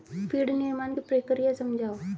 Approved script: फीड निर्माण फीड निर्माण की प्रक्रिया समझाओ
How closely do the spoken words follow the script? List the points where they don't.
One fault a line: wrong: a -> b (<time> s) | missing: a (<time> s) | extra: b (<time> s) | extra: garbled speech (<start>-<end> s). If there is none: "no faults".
missing: फीड निर्माण (0.9 s)